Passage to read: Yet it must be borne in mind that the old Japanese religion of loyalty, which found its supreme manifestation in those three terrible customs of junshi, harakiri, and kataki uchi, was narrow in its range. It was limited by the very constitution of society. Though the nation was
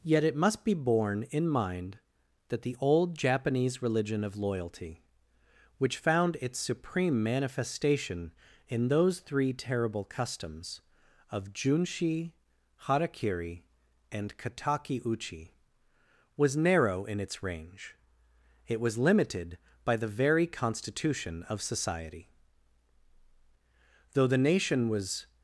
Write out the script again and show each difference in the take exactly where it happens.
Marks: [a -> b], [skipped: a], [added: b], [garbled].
Yet it must be borne in mind that the old Japanese religion of loyalty, which found its supreme manifestation in those three terrible customs of junshi, harakiri, and kataki uchi, was narrow in its range. It was limited by the very constitution of society. Though the nation was